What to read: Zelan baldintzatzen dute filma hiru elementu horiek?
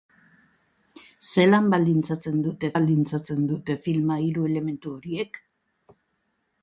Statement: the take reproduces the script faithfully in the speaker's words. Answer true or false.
false